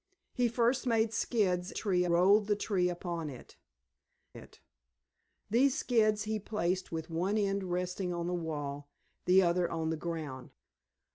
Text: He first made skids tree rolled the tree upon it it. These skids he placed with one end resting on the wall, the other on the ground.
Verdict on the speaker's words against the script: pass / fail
pass